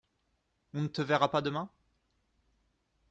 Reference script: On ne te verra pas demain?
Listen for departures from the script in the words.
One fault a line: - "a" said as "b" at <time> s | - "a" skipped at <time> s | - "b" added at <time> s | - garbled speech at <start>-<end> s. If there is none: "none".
none